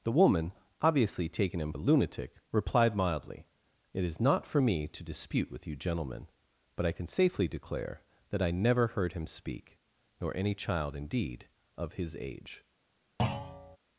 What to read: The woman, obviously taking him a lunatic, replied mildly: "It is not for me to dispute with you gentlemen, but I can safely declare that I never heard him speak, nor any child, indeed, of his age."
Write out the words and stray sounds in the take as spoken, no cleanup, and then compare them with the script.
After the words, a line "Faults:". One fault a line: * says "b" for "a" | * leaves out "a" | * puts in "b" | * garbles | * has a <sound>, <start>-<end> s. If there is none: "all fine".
The woman, obviously taking him a lunatic, replied mildly: "It is not for me to dispute with you gentlemen, but I can safely declare that I never heard him speak, nor any child, indeed, of his age."
Faults:
* has a thud, 13.2-13.8 s